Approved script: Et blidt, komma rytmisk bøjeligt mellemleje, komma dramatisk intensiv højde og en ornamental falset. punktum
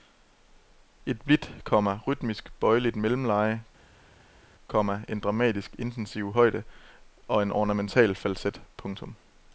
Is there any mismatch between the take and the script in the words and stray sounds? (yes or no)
yes